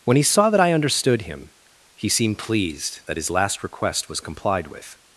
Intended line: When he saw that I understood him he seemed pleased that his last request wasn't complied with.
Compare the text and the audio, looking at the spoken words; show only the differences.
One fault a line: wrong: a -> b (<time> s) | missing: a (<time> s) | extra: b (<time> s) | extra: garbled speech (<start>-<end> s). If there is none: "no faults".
wrong: wasn't -> was (4.1 s)